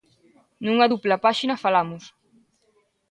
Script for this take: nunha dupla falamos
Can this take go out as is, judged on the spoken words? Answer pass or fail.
fail